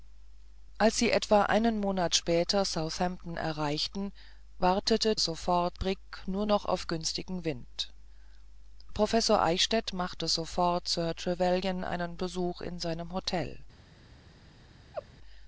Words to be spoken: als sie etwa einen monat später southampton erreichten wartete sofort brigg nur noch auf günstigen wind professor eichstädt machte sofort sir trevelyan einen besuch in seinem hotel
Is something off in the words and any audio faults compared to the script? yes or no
yes